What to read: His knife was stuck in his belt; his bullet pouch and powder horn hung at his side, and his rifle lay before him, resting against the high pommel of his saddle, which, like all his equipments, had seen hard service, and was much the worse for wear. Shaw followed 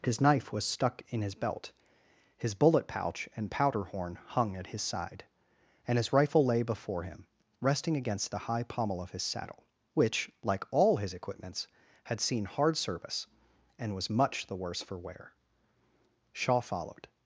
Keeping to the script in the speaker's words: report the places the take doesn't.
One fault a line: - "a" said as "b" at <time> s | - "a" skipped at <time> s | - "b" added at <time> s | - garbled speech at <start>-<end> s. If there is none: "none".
none